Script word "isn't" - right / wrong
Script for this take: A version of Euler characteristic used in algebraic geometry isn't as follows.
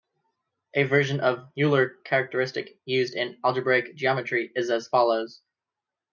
wrong